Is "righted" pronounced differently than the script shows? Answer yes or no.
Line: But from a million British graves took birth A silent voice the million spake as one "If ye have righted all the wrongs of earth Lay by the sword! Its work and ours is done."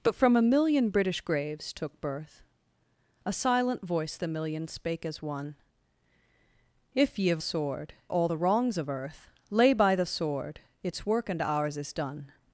yes